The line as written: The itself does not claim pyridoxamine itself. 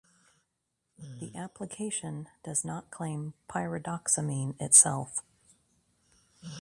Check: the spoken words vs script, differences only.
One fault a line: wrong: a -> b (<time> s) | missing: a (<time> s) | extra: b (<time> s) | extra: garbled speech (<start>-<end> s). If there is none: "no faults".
wrong: itself -> application (1.4 s)